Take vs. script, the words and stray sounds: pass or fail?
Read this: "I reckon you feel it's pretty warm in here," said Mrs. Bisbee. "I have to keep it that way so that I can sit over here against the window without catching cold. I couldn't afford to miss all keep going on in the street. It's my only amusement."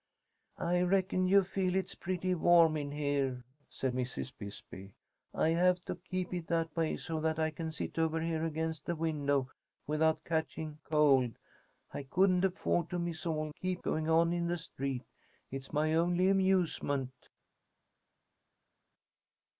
pass